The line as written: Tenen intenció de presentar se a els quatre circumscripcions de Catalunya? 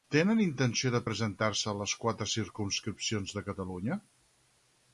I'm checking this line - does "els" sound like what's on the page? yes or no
no